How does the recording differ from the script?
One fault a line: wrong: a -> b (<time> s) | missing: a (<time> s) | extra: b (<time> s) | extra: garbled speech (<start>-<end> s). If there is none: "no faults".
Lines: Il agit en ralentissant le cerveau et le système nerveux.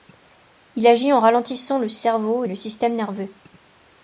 no faults